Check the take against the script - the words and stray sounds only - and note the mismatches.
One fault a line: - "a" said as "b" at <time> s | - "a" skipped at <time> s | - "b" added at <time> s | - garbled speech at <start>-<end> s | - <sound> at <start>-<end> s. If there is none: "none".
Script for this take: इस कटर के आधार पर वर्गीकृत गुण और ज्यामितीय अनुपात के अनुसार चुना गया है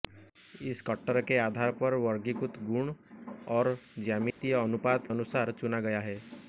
- dropout at 4.3-4.4 s
- "के" skipped at 5.1 s